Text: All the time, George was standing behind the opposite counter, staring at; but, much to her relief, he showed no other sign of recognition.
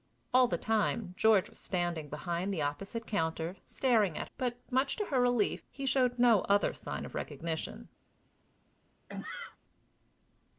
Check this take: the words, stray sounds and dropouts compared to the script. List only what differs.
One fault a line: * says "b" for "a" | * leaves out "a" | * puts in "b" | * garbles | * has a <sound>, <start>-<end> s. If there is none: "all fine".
* has a sneeze, 9.1-9.6 s